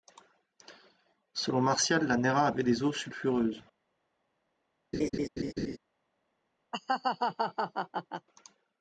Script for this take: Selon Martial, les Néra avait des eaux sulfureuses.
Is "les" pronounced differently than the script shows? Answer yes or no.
yes